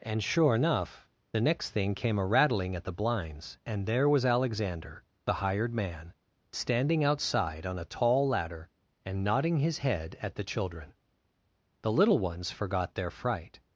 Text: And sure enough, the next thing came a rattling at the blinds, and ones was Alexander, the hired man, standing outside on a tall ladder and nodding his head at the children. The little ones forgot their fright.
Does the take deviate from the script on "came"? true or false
false